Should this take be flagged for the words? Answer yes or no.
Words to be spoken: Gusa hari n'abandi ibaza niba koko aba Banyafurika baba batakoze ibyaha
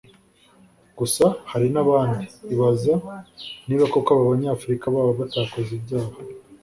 no